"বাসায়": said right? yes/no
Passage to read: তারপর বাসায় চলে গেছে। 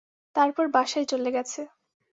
yes